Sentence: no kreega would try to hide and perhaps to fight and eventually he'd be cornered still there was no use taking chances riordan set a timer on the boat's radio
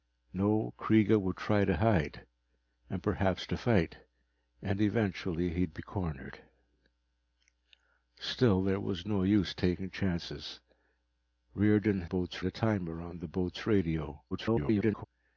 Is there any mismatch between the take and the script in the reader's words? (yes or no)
yes